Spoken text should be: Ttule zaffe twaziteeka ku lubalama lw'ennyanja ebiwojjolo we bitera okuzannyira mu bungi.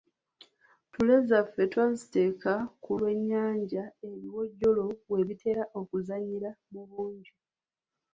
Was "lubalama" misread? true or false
true